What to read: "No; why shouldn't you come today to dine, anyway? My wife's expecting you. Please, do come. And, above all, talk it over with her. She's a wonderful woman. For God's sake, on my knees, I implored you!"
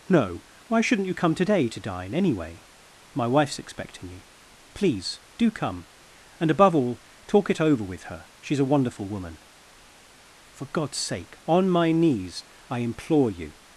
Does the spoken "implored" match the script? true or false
false